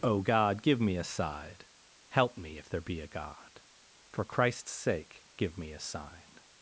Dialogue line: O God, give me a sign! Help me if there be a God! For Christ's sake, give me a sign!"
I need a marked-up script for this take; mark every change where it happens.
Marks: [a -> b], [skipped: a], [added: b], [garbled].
O God, give me a [sign! -> side] Help me if there be a God! For Christ's sake, give me a sign!"